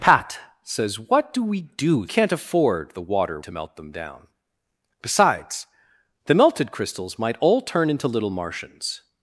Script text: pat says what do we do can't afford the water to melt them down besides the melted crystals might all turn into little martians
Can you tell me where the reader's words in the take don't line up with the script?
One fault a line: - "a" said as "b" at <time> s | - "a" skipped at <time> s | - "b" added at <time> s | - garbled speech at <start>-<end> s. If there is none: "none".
none